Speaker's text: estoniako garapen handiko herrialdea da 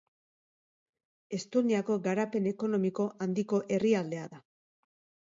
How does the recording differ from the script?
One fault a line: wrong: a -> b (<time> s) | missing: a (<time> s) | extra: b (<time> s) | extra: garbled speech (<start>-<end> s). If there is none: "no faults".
extra: ekonomiko (2.5 s)